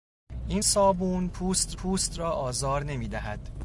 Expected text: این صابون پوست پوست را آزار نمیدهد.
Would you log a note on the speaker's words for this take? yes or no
no